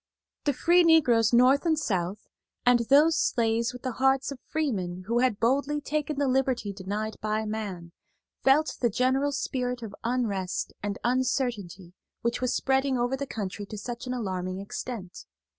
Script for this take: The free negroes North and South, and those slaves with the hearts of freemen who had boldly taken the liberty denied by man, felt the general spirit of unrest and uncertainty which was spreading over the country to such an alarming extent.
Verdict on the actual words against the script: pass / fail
pass